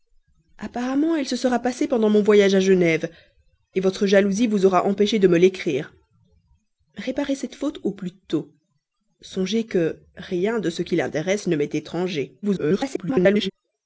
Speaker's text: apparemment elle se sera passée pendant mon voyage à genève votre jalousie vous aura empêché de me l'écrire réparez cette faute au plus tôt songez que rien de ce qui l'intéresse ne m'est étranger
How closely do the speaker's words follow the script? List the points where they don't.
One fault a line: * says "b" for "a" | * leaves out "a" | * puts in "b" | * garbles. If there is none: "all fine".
* garbles